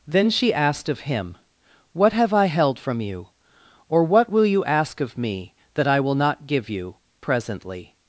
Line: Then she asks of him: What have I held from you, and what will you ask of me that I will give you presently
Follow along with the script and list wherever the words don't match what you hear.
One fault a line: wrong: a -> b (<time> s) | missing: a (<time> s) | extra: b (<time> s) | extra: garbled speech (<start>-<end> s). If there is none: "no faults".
wrong: asks -> asked (0.5 s)
wrong: and -> or (3.9 s)
extra: not (6.1 s)